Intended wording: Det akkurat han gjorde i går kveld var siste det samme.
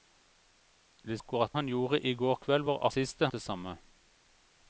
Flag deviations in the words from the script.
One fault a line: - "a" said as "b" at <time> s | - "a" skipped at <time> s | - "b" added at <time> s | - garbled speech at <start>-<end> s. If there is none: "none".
none